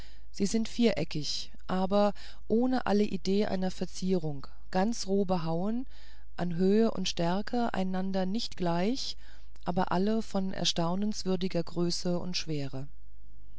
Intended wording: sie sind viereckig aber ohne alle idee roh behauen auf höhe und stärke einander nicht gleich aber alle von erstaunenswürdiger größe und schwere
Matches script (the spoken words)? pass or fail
fail